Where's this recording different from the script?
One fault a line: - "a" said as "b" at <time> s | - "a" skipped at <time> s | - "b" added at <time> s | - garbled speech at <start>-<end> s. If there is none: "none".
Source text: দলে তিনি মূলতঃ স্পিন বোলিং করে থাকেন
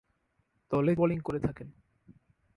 - "তিনি মূলতঃ স্পিন" skipped at 0.9 s